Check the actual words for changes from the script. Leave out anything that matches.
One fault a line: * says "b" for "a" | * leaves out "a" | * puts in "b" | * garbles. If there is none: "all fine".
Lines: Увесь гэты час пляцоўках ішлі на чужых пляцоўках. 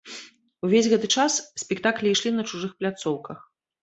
* says "спектаклі" for "пляцоўках"